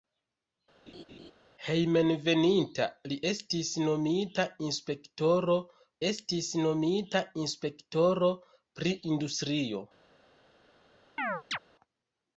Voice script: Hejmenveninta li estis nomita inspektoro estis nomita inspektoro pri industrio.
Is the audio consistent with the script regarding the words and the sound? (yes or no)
no